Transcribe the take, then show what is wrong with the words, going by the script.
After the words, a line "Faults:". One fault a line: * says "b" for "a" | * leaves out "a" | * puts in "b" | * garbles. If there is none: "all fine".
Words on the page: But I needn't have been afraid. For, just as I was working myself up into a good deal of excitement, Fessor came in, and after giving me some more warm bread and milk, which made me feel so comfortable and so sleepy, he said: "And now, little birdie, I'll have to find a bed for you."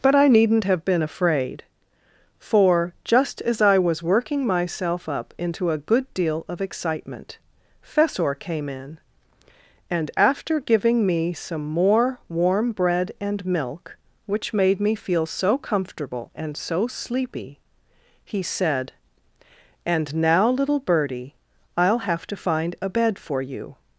But I needn't have been afraid. For, just as I was working myself up into a good deal of excitement, Fessor came in, and after giving me some more warm bread and milk, which made me feel so comfortable and so sleepy, he said: "And now, little birdie, I'll have to find a bed for you."
Faults:
all fine